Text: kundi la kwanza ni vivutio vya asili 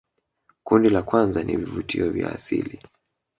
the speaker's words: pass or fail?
pass